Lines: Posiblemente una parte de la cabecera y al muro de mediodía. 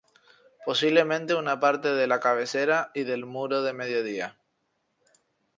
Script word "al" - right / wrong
wrong